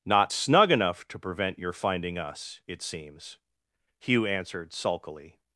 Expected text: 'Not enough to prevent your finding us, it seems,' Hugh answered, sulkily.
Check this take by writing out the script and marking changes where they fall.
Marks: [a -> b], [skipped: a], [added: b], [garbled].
'Not [added: snug] enough to prevent your finding us, it seems,' Hugh answered, sulkily.